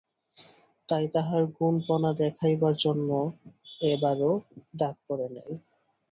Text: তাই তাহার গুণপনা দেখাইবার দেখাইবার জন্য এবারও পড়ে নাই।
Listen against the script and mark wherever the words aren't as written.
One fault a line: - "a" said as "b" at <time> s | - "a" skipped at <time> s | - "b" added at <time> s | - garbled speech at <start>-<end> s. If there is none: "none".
- "দেখাইবার" skipped at 2.7 s
- "ডাক" added at 4.8 s